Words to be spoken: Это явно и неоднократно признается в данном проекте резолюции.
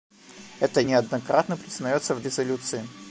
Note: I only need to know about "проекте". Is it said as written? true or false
false